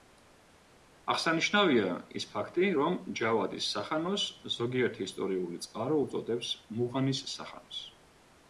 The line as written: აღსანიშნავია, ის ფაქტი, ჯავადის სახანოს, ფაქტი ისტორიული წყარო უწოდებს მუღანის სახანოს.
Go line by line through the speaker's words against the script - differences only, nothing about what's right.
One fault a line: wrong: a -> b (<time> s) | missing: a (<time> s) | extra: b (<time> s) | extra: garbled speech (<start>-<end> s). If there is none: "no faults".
extra: რომ (2.8 s)
wrong: ფაქტი -> ზოგიერთი (4.6 s)